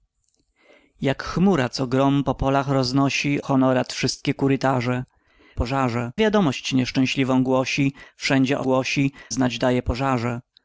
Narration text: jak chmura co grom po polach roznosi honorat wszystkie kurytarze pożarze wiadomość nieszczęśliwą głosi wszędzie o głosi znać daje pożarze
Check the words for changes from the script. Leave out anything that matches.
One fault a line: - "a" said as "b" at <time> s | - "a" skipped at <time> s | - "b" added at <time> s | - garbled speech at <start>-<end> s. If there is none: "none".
none